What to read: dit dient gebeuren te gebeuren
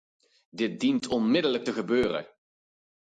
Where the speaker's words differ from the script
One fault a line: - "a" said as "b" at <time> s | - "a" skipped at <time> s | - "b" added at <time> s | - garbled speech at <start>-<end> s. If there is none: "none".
- "gebeuren" said as "onmiddellijk" at 1.1 s